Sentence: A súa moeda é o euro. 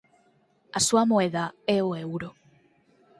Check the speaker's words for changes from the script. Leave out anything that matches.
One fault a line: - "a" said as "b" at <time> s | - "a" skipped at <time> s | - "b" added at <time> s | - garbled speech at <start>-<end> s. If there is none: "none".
none